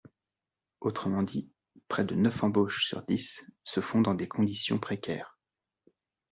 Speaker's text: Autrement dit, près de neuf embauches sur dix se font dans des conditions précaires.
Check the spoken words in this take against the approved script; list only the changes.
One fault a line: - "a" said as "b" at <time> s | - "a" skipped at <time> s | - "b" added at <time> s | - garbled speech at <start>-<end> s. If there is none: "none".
none